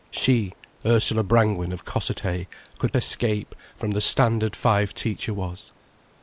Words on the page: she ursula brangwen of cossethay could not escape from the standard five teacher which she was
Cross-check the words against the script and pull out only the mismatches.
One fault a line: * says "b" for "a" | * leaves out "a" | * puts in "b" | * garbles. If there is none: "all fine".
* leaves out "not"
* leaves out "which she"